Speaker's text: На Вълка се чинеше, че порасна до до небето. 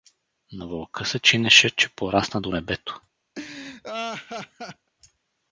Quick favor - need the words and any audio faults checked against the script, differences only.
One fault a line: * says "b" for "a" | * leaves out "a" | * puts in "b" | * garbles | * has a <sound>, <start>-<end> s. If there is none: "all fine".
* leaves out "до"
* has a laugh, 3.4-4.9 s